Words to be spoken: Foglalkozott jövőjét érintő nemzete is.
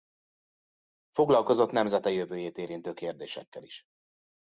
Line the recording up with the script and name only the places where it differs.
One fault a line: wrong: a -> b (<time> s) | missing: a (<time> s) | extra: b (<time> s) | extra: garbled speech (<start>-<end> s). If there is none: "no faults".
extra: nemzete (1.7 s)
wrong: nemzete -> kérdésekkel (2.9 s)